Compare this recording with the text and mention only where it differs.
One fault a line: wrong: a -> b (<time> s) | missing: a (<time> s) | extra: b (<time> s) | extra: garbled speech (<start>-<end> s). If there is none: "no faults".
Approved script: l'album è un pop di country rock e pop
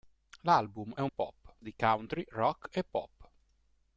no faults